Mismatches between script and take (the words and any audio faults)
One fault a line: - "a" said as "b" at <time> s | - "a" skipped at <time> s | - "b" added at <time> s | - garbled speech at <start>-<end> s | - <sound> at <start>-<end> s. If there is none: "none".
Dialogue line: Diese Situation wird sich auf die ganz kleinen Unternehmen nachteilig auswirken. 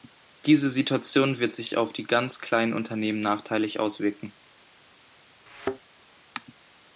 - thud at 5.5-5.8 s